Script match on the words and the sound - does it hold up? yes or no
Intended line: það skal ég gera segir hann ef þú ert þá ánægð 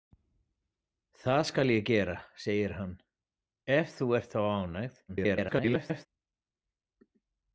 no